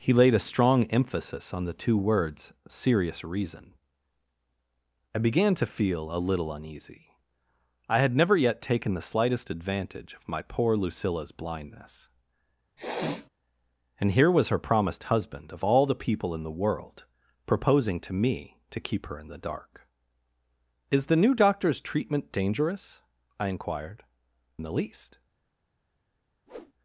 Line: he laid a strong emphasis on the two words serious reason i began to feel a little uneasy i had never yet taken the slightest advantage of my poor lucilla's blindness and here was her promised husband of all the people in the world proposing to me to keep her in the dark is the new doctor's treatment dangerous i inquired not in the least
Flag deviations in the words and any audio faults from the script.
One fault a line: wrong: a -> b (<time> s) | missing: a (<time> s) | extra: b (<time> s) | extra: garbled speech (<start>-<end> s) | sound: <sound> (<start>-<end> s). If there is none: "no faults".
sound: sniff (12.8-13.3 s)
missing: not (24.0 s)
sound: whoosh (26.5-26.7 s)